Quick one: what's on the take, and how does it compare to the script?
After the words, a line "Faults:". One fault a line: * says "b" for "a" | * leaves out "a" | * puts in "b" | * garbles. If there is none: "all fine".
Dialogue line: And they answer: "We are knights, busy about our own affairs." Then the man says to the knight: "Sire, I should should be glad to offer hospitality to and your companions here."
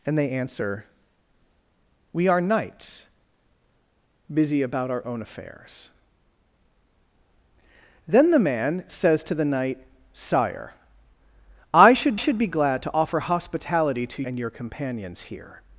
And they answer: "We are knights, busy about our own affairs." Then the man says to the knight: "Sire, I should should be glad to offer hospitality to and your companions here."
Faults:
all fine